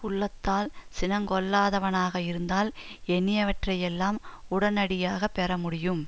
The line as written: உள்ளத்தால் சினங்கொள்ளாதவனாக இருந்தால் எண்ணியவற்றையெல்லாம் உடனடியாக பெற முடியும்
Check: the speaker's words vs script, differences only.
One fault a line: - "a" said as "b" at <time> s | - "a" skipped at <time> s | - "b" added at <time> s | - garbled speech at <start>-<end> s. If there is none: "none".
none